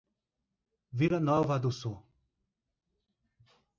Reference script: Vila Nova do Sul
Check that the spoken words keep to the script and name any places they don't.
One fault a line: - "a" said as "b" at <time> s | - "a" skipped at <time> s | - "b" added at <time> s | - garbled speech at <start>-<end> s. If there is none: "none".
none